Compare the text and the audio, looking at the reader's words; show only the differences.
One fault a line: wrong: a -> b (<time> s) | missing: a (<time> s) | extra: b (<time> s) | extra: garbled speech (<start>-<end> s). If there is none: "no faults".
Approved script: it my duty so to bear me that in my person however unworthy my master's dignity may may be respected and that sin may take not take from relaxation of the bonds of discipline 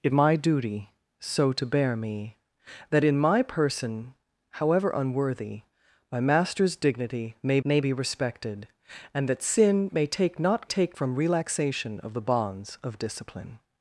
no faults